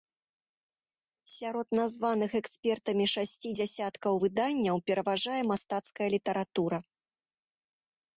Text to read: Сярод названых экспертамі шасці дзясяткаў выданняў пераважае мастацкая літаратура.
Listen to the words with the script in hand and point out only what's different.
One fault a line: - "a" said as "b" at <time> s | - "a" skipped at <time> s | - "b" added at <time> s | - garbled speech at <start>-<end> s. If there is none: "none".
none